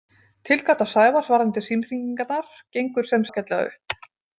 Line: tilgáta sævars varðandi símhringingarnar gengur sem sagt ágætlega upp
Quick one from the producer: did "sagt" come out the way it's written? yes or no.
no